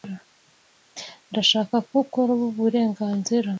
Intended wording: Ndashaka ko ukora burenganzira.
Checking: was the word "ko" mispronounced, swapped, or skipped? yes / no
no